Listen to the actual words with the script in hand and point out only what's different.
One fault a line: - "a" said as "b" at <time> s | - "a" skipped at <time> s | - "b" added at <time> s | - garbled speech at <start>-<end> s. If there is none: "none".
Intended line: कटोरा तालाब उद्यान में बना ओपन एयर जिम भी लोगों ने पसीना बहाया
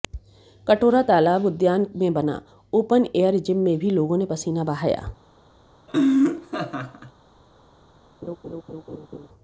- "में" added at 3.7 s